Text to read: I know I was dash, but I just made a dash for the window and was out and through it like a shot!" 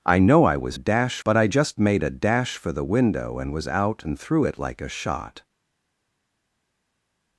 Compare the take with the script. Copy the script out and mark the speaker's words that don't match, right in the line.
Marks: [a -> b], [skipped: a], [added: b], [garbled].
I know I was dash, but I just made a dash for the window and was out and through it like a shot!"